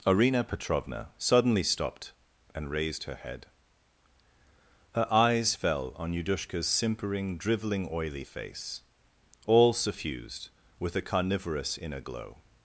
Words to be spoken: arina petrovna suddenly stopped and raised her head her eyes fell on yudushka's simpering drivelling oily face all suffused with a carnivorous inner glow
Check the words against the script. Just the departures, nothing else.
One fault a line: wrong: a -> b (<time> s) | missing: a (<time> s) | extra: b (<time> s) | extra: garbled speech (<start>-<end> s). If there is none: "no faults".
no faults